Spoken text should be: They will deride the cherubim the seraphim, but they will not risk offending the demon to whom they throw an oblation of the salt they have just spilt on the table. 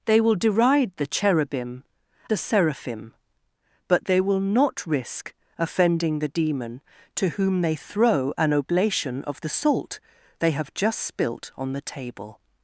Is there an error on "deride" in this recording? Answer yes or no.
no